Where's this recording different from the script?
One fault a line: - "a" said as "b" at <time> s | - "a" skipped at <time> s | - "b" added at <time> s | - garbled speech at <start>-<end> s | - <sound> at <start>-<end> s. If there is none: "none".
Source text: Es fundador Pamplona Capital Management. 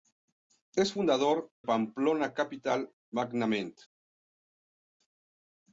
none